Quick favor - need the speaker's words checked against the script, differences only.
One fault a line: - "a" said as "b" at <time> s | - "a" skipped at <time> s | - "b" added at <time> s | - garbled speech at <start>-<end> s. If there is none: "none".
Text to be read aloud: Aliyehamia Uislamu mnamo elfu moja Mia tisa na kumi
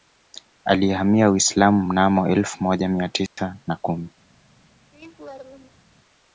none